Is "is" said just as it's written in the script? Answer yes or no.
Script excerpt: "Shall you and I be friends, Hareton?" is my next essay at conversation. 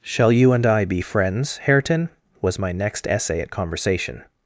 no